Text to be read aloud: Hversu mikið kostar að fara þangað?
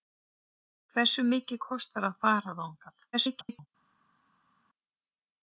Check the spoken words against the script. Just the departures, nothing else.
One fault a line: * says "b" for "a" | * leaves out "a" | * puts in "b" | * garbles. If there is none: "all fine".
* garbles